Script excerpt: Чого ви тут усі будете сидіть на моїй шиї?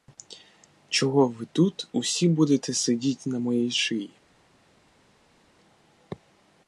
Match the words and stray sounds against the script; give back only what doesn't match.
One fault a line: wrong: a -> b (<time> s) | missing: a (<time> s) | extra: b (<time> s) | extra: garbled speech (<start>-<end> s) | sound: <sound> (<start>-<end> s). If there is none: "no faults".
no faults